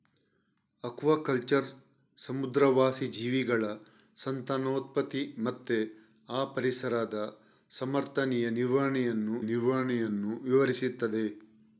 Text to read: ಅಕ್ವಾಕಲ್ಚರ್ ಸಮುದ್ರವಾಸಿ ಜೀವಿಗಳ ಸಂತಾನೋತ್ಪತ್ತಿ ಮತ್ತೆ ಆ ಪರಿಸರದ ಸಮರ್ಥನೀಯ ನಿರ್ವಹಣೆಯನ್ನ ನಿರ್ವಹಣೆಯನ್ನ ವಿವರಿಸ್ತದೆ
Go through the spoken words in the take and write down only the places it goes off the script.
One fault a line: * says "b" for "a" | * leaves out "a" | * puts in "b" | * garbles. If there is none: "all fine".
all fine